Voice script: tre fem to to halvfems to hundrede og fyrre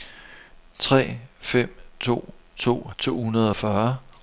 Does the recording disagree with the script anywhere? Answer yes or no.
yes